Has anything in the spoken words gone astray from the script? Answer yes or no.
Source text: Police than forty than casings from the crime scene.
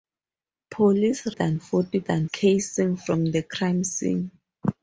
no